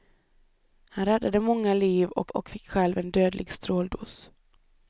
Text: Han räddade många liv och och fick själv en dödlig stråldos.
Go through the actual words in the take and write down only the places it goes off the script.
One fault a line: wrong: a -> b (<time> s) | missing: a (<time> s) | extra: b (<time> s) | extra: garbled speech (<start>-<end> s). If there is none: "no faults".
no faults